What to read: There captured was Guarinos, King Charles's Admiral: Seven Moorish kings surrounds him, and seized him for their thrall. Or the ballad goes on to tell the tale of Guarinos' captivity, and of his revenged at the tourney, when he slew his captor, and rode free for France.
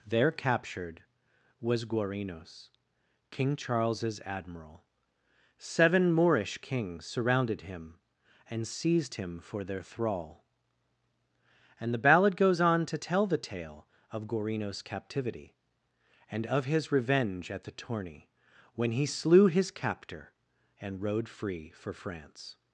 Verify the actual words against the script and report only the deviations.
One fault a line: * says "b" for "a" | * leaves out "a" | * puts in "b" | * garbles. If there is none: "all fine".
* says "surrounded" for "surrounds"
* says "And" for "Or"
* says "revenge" for "revenged"